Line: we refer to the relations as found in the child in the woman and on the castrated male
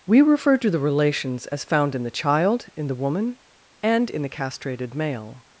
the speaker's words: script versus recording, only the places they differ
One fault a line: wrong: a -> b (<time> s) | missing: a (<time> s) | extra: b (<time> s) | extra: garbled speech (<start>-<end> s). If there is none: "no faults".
wrong: on -> in (4.1 s)